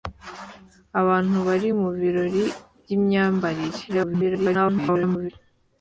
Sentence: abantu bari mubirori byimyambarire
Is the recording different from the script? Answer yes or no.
yes